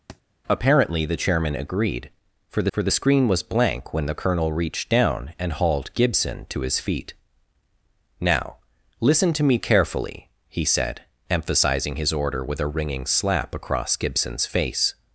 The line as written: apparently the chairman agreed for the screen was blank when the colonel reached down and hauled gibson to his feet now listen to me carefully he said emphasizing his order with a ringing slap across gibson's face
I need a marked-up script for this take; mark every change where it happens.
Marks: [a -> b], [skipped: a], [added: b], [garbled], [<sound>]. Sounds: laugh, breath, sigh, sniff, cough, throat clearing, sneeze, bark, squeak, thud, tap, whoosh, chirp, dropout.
[thud] apparently the chairman agreed for the [added: for the] screen was blank when the colonel reached down and hauled gibson to his feet now listen to me carefully he said emphasizing his order with a ringing slap across gibson's face